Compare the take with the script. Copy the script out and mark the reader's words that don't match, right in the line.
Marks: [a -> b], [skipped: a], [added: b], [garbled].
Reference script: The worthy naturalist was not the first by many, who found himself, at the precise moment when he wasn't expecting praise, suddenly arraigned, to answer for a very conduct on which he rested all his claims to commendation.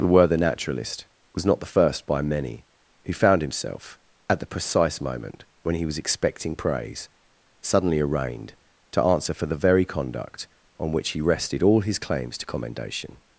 The worthy naturalist was not the first by many, who found himself, at the precise moment when he [wasn't -> was] expecting praise, suddenly arraigned, to answer for [a -> the] very conduct on which he rested all his claims to commendation.